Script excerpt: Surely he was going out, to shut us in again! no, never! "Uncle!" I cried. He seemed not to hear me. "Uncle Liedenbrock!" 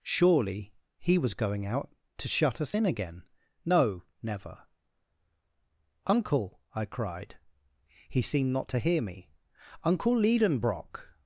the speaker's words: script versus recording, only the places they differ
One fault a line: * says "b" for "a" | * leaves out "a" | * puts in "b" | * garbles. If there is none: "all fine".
all fine